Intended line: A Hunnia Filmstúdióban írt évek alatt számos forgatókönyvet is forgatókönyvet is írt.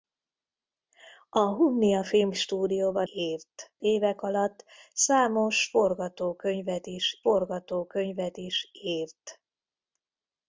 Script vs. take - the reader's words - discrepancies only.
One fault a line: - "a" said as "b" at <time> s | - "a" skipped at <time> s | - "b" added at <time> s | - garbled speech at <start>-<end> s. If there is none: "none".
none